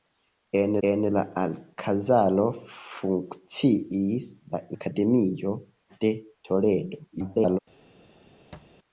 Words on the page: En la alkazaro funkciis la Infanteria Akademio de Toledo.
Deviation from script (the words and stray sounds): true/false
true